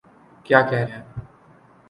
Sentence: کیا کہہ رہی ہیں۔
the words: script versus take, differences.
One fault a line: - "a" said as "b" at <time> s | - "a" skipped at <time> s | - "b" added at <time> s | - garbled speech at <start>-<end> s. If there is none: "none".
- "رہی" skipped at 0.8 s